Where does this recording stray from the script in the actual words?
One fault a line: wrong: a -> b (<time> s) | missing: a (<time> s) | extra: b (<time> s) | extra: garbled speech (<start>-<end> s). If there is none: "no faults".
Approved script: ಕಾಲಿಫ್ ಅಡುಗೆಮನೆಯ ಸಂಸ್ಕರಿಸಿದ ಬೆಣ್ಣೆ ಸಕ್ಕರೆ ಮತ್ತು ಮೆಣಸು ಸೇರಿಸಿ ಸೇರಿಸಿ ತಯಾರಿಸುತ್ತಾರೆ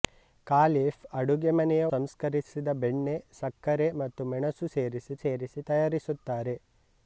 no faults